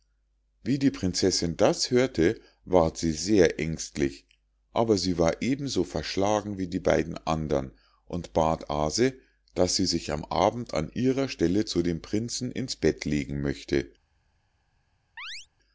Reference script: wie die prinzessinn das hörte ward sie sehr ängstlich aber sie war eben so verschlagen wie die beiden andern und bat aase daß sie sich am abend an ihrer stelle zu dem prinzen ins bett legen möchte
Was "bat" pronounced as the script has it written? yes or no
yes